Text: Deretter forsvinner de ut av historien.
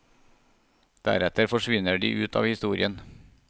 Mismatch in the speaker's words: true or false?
false